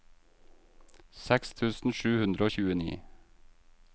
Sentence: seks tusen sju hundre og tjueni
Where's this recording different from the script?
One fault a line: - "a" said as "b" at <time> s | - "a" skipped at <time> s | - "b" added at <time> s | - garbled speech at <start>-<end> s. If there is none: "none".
none